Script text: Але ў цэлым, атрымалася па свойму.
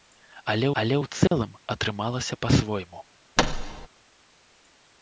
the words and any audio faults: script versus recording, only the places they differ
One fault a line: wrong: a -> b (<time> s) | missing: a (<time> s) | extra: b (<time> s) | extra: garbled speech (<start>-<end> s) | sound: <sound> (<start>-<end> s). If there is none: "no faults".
extra: але (0.8 s)
sound: dropout (1.3-1.3 s)
sound: thud (3.4-3.9 s)